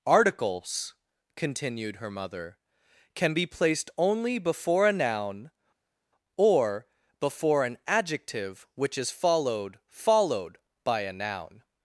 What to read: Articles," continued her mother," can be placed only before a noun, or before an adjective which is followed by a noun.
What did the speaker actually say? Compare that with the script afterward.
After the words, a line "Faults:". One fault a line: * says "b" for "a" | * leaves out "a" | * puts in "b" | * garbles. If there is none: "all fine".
Articles," continued her mother," can be placed only before a noun, or before an adjective which is followed followed by a noun.
Faults:
* puts in "followed"